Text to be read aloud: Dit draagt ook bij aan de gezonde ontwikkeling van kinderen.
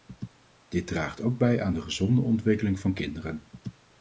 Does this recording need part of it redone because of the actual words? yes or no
no